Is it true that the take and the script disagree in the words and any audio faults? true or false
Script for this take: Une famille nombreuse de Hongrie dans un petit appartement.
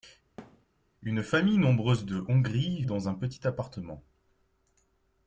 true